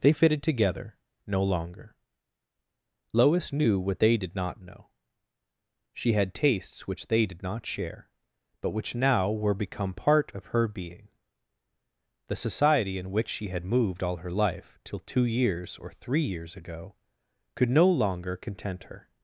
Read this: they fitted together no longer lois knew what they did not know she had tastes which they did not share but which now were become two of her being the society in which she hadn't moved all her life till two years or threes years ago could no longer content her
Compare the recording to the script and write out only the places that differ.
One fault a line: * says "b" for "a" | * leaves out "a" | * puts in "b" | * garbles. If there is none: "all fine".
* says "part" for "two"
* says "had" for "hadn't"
* says "three" for "threes"